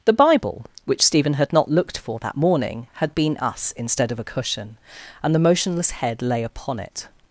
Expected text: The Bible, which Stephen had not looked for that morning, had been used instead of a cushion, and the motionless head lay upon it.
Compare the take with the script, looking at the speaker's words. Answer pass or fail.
fail